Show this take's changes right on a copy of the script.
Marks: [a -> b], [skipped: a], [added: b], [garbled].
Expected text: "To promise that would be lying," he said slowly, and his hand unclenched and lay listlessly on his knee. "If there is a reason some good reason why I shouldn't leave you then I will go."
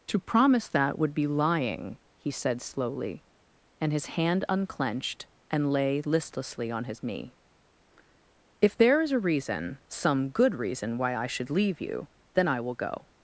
"To promise that would be lying," he said slowly, and his hand unclenched and lay listlessly on his knee. "If there is a reason some good reason why I [shouldn't -> should] leave you then I will go."